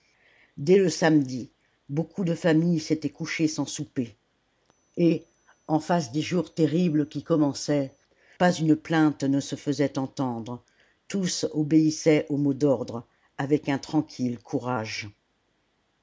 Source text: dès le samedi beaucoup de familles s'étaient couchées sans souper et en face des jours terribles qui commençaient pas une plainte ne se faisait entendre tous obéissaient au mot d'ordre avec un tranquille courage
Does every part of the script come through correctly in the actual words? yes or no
yes